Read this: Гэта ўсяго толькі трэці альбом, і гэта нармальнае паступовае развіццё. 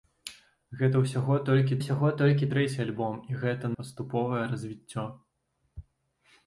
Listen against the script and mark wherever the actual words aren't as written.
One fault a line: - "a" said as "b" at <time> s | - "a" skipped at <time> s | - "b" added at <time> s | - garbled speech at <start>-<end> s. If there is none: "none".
- "ўсяго толькі" added at 1.8 s
- "нармальнае" skipped at 3.7 s